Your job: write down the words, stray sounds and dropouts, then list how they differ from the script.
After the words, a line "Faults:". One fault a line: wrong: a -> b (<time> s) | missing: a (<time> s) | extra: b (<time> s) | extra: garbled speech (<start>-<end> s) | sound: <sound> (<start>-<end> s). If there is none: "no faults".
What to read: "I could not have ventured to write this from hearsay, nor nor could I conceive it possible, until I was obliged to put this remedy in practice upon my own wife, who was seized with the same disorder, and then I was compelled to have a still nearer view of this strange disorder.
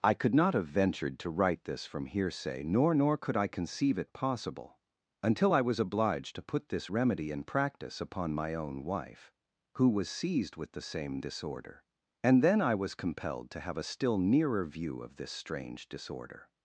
"I could not have ventured to write this from hearsay, nor nor could I conceive it possible, until I was obliged to put this remedy in practice upon my own wife, who was seized with the same disorder, and then I was compelled to have a still nearer view of this strange disorder.
Faults:
no faults